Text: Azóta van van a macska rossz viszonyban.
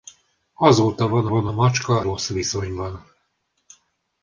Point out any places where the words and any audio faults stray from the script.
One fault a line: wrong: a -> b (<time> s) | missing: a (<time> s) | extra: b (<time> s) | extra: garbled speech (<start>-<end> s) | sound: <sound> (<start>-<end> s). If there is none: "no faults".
no faults